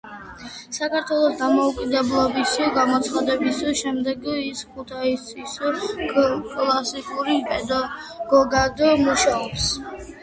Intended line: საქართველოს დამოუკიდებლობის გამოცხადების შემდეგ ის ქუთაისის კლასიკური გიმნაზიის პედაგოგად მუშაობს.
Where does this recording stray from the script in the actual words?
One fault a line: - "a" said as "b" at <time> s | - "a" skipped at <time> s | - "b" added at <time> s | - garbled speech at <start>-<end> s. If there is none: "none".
- "გიმნაზიის" skipped at 7.4 s